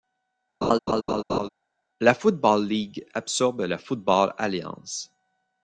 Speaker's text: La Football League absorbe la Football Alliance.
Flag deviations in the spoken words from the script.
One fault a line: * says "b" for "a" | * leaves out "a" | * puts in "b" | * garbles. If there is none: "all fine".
all fine